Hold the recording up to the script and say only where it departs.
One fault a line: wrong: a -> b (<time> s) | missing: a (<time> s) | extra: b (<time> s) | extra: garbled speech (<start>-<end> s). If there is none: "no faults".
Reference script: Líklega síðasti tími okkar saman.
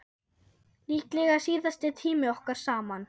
no faults